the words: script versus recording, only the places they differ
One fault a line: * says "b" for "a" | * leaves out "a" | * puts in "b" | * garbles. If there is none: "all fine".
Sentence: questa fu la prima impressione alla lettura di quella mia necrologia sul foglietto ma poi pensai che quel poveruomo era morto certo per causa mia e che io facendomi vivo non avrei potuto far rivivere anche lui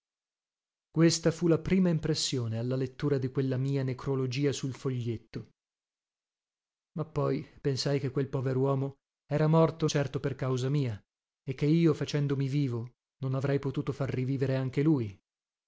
all fine